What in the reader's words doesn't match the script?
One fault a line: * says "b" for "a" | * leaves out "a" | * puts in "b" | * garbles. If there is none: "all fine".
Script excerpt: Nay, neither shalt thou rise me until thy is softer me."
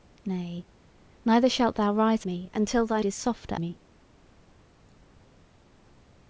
all fine